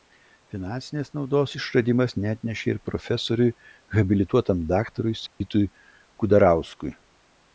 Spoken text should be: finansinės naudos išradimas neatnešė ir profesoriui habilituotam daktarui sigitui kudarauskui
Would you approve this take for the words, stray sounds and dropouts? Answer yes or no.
no